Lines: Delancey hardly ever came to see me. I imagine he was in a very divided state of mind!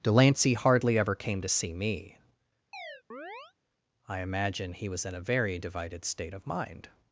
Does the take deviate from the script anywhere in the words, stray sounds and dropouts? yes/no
yes